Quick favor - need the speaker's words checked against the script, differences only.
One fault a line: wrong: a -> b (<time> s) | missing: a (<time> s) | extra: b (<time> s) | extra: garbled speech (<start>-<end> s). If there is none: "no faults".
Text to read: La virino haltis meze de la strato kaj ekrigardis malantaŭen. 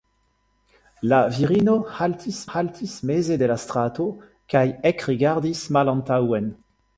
extra: haltis (2.5 s)